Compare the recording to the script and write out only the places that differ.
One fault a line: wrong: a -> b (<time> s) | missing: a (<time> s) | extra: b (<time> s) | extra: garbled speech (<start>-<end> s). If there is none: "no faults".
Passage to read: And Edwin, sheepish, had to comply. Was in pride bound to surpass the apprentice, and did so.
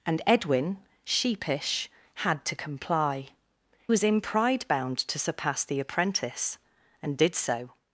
no faults